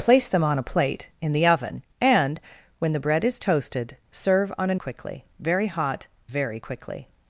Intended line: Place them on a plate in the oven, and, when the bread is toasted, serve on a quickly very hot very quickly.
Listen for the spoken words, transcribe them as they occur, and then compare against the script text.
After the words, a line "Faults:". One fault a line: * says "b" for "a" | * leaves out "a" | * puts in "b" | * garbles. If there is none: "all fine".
Place them on a plate in the oven, and, when the bread is toasted, serve on a quickly very hot very quickly.
Faults:
all fine